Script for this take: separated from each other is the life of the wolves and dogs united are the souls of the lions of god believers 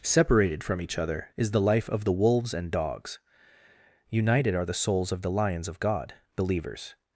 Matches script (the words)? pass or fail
pass